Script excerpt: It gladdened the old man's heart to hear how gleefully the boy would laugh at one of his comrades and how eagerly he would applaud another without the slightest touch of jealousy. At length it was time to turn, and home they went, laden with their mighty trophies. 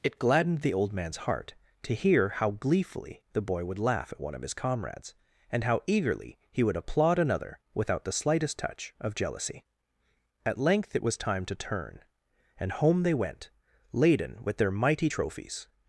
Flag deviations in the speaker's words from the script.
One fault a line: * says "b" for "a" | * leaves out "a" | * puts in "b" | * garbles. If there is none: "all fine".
all fine